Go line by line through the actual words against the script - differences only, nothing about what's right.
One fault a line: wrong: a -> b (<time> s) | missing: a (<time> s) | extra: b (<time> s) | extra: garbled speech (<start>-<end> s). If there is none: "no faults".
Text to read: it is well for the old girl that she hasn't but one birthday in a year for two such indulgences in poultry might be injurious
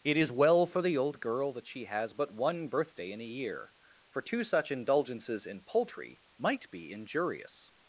wrong: hasn't -> has (1.9 s)